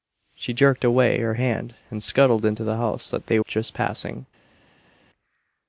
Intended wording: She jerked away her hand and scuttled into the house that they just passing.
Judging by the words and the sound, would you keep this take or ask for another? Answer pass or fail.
pass